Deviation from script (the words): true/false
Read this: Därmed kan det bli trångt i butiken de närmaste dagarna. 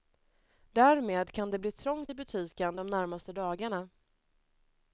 false